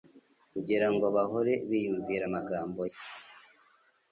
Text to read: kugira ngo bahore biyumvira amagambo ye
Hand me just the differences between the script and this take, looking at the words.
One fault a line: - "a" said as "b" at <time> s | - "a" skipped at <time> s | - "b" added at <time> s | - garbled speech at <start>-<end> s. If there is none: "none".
none